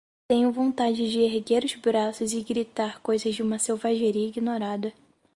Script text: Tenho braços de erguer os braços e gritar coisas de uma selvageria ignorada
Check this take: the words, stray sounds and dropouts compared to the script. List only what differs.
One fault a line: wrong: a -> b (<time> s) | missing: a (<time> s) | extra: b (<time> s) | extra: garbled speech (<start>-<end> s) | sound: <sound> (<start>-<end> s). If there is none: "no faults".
wrong: braços -> vontade (0.5 s)